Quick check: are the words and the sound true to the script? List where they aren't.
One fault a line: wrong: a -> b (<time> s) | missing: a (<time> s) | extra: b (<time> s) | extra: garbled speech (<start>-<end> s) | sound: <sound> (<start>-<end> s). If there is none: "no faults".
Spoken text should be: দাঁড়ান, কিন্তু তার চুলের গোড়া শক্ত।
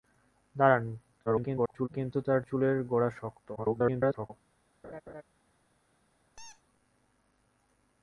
extra: garbled speech (1.3-1.9 s)
extra: garbled speech (3.6-4.3 s)
sound: laugh (4.8-5.2 s)
sound: squeak (6.4-6.6 s)